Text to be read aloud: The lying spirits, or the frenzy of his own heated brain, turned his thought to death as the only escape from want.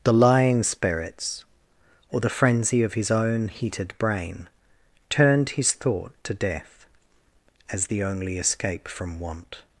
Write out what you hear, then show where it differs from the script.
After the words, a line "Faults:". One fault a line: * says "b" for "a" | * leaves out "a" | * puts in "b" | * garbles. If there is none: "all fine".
The lying spirits, or the frenzy of his own heated brain, turned his thought to death as the only escape from want.
Faults:
all fine